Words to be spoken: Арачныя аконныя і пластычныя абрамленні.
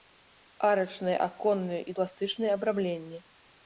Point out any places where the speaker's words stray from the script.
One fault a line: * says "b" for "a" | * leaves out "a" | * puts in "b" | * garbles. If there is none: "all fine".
all fine